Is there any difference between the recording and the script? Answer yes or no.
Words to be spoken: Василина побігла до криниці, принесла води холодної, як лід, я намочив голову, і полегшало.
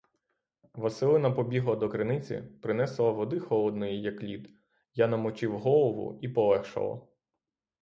no